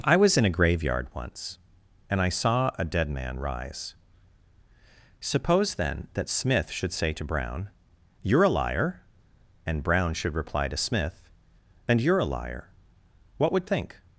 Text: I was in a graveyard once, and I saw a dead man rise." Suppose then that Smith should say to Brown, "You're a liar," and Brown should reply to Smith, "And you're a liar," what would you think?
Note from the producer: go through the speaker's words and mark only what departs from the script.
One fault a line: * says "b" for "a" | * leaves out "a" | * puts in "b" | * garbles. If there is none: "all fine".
* leaves out "you"